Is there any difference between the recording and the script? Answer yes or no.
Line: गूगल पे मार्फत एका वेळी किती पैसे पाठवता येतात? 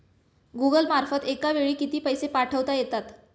yes